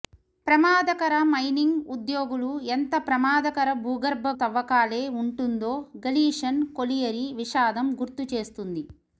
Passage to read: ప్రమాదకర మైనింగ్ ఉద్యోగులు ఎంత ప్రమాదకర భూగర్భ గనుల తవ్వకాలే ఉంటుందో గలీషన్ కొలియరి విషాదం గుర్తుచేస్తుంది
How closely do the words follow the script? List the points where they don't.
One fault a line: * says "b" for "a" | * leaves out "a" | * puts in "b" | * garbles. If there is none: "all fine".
* leaves out "గనుల"